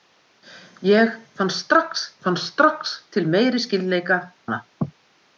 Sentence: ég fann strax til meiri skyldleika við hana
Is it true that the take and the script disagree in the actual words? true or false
true